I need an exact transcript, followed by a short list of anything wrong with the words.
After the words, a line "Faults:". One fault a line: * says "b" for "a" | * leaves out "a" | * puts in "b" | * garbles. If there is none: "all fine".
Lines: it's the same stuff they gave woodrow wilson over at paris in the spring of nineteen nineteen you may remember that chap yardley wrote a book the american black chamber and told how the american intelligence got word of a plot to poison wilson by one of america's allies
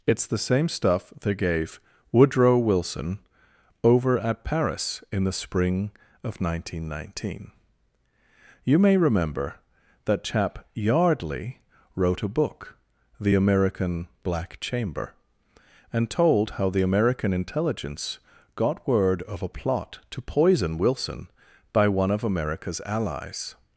it's the same stuff they gave woodrow wilson over at paris in the spring of nineteen nineteen you may remember that chap yardley wrote a book the american black chamber and told how the american intelligence got word of a plot to poison wilson by one of america's allies
Faults:
all fine